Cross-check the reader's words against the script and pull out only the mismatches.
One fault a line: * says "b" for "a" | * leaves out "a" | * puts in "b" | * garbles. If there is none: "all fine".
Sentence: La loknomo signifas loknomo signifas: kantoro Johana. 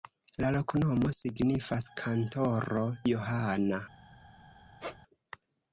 * leaves out "loknomo signifas"